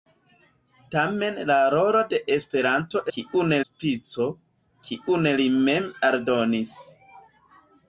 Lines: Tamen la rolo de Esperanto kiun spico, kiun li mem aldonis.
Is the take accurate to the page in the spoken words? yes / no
yes